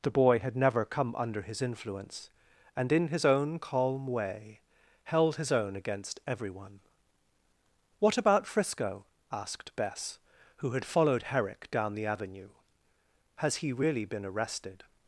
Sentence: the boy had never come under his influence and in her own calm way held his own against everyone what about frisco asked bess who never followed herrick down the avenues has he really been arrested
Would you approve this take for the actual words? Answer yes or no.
no